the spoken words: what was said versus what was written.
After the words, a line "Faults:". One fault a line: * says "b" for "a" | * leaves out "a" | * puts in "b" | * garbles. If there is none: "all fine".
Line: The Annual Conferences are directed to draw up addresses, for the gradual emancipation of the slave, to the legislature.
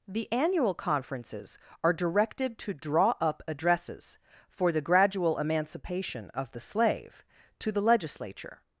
The Annual Conferences are directed to draw up addresses, for the gradual emancipation of the slave, to the legislature.
Faults:
all fine